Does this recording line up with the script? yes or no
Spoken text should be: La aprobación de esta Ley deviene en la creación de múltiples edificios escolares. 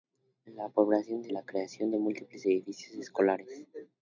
no